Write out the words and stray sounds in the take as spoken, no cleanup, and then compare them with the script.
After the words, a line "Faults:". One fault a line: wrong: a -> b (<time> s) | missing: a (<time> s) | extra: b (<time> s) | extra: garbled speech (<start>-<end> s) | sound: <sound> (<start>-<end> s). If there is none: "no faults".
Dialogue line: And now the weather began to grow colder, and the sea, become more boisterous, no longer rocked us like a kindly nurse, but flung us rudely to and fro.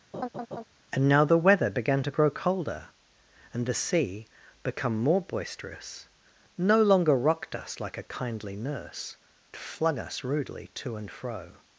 And now the weather began to grow colder, and the sea, become more boisterous, no longer rocked us like a kindly nurse, flung us rudely to and fro.
Faults:
sound: laugh (0.1-0.6 s)
missing: but (9.2 s)